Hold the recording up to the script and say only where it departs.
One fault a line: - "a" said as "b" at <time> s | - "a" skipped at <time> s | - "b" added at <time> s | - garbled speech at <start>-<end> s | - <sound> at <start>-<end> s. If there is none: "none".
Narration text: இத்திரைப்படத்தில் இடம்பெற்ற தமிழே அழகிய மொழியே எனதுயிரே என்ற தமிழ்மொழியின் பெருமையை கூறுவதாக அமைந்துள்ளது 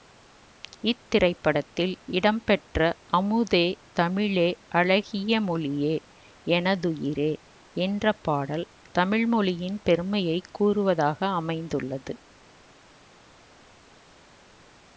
- "அமுதே" added at 3.1 s
- "பாடல்" added at 8.2 s